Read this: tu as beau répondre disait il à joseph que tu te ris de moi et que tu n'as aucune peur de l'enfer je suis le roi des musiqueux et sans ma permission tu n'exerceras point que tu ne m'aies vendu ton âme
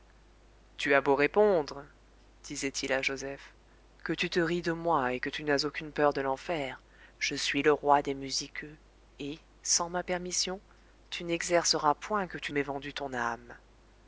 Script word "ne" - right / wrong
wrong